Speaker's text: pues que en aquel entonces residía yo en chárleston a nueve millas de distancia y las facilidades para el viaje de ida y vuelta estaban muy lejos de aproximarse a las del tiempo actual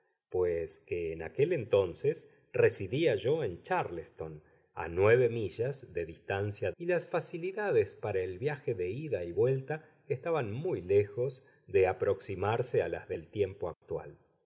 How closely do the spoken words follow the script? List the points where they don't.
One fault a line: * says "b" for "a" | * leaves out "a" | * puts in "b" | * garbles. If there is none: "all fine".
all fine